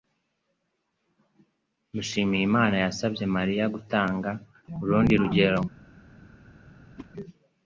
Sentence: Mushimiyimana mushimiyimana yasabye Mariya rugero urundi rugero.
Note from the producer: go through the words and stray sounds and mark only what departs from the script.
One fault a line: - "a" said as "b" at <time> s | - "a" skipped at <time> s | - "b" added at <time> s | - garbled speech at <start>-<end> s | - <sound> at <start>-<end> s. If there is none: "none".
- "mushimiyimana" skipped at 2.8 s
- "rugero" said as "gutanga" at 3.8 s
- whoosh at 7.0-7.1 s